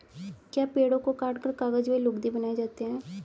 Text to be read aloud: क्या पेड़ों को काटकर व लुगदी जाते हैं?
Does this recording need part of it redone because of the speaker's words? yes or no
yes